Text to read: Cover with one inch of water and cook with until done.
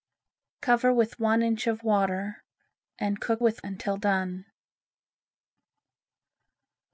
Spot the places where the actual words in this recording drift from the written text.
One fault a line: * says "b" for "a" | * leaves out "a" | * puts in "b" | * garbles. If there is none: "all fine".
all fine